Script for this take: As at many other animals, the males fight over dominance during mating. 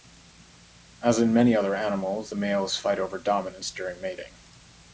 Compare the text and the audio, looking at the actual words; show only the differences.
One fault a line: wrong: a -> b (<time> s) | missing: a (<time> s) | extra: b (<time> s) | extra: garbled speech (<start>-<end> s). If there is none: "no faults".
wrong: at -> in (1.2 s)